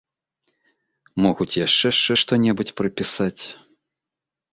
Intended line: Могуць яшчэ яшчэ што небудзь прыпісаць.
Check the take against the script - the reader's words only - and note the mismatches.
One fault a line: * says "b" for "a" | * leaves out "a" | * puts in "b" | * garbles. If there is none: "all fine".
all fine